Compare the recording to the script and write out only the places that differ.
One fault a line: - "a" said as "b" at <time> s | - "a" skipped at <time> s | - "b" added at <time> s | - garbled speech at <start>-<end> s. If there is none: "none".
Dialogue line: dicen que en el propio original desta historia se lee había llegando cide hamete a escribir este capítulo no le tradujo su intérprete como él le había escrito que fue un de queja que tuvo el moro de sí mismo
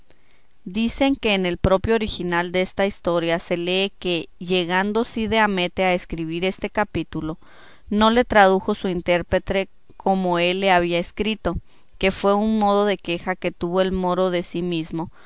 - "había" said as "que" at 4.0 s
- "modo" added at 12.6 s